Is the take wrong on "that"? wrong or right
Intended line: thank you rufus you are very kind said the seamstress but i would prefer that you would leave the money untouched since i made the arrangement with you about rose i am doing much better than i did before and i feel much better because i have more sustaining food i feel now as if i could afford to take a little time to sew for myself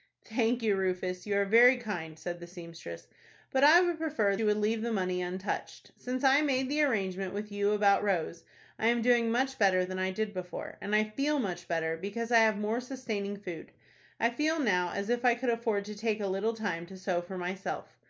wrong